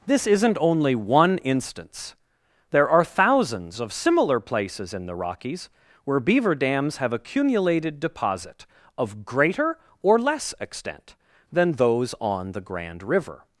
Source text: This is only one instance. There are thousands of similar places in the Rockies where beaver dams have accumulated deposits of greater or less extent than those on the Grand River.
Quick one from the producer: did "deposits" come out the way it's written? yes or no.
no